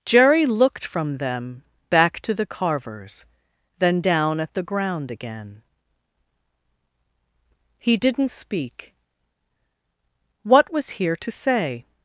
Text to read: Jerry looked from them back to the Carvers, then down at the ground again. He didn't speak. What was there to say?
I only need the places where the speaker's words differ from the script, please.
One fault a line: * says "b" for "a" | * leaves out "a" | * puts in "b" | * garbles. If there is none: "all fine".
* says "here" for "there"